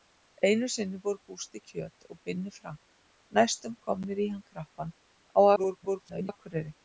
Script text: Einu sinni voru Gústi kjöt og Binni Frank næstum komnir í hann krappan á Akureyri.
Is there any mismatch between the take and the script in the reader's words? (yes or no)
yes